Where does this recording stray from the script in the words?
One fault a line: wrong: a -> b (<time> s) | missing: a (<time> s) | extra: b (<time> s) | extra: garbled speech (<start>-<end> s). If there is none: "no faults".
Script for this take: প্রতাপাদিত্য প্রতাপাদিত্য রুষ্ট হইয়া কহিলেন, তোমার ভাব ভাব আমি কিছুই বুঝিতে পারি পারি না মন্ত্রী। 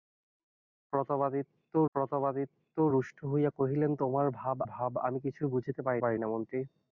no faults